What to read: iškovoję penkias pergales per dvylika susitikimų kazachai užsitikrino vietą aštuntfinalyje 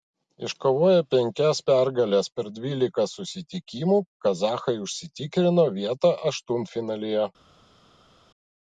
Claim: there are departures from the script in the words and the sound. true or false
false